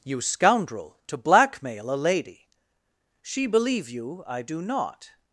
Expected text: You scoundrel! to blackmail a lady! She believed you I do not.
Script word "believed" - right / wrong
wrong